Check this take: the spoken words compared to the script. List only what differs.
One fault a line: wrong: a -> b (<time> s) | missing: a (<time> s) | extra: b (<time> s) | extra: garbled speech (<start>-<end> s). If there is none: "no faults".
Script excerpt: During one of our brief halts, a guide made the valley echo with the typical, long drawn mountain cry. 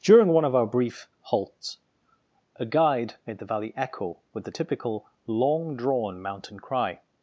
no faults